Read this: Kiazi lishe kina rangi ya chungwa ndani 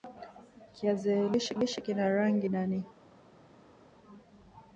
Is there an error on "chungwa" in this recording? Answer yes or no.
yes